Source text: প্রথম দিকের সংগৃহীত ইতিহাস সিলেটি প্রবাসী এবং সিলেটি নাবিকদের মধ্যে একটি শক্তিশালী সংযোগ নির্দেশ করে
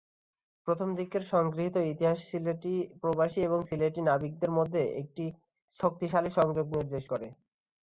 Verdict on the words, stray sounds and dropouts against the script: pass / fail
pass